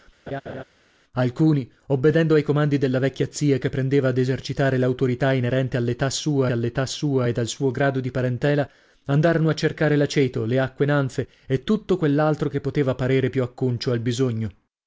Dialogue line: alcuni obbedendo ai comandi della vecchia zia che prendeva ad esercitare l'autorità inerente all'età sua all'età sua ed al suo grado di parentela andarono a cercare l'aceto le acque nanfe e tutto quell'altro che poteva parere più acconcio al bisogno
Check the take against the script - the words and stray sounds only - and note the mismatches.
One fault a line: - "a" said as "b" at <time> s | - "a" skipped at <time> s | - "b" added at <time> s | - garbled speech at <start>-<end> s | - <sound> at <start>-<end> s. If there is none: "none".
- laugh at 0.3-0.6 s